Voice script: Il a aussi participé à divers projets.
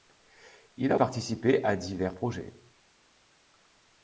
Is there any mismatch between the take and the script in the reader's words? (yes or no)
yes